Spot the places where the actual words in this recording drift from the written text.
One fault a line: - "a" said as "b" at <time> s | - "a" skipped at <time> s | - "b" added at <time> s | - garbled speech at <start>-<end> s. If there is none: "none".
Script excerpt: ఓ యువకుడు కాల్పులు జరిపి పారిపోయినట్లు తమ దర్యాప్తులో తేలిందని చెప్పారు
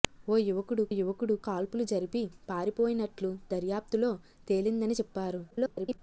- "యువకుడు" added at 0.9 s
- "తమ" skipped at 3.3 s
- garbled speech at 5.5-6.0 s